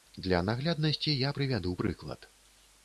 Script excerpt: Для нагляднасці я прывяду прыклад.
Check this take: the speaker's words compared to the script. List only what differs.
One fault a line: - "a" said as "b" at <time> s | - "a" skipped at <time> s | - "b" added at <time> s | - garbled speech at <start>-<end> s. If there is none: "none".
none